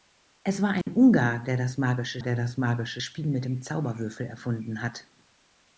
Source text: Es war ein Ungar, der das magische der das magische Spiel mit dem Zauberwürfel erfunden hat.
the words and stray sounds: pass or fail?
fail